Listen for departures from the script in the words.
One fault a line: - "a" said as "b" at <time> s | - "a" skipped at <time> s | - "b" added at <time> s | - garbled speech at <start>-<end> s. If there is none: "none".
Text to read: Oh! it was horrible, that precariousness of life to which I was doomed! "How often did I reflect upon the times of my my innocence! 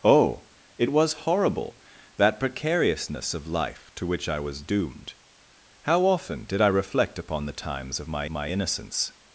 none